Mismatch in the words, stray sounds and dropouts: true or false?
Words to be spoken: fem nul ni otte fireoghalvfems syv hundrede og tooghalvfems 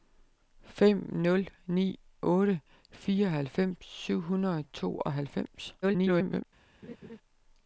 true